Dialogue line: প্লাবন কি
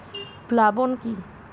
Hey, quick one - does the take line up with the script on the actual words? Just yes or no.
yes